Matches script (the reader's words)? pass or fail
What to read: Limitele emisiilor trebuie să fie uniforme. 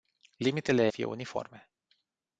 fail